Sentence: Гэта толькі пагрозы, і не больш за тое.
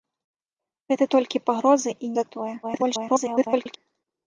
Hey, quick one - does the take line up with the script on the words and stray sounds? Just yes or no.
no